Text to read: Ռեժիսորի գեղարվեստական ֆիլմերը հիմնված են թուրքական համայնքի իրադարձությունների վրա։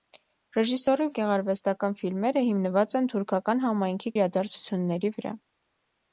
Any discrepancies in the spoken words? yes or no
no